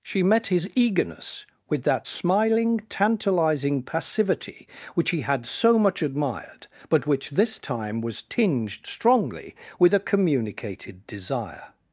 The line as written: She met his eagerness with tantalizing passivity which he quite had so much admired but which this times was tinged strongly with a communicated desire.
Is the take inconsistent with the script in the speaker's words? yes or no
yes